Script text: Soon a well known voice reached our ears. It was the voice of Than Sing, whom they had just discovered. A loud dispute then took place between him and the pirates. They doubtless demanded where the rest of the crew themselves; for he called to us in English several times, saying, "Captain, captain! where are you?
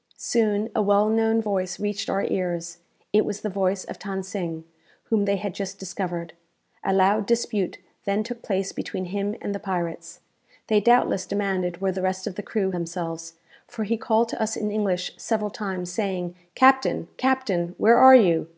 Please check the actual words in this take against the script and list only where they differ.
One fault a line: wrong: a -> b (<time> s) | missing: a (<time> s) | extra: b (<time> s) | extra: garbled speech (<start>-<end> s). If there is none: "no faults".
no faults